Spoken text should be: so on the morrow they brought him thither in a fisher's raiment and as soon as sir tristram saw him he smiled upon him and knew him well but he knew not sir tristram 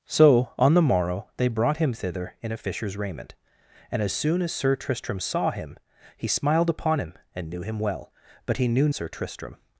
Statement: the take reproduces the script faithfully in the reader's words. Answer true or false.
false